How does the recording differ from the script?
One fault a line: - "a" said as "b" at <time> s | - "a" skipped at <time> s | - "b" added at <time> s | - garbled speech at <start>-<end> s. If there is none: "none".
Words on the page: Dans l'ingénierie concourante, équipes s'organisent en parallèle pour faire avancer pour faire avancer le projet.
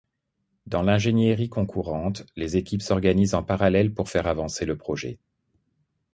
- "les" added at 2.4 s
- "pour faire avancer" skipped at 4.7 s